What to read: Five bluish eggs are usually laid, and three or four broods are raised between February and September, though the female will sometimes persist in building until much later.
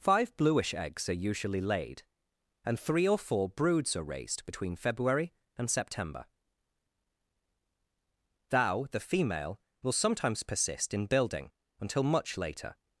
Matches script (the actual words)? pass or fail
fail